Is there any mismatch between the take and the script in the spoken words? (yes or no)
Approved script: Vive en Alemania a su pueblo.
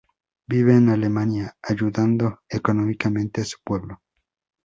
yes